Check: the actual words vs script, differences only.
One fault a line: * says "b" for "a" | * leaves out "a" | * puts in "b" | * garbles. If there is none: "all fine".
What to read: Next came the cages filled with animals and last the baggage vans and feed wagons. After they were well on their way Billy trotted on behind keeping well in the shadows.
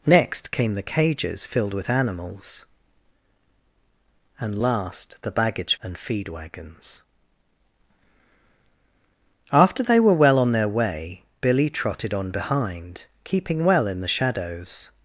* leaves out "vans"